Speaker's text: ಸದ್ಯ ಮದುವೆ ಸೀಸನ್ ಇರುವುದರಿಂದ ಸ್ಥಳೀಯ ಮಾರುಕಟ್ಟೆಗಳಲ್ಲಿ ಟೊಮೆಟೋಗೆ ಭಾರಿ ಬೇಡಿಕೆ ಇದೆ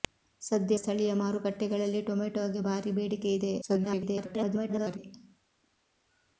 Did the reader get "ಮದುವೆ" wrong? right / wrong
wrong